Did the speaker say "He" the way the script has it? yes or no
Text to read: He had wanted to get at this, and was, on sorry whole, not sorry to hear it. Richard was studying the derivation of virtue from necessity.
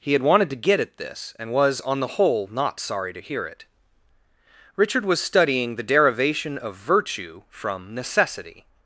yes